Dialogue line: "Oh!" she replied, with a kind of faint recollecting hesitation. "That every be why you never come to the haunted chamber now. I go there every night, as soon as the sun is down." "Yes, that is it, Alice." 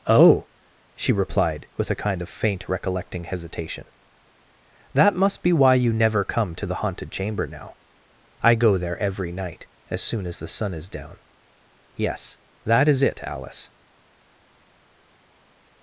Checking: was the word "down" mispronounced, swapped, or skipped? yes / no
no